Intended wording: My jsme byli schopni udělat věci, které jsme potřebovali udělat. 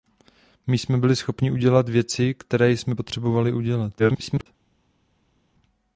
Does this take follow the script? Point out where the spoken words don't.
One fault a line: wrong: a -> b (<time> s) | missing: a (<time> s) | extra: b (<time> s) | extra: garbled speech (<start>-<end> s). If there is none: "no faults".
extra: garbled speech (4.0-4.5 s)